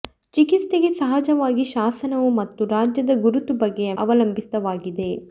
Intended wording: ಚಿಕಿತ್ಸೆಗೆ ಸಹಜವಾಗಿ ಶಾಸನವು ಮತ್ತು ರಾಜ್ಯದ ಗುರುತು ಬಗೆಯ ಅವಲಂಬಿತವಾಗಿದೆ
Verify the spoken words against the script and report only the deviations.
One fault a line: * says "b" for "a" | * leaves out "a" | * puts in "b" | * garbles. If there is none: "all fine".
all fine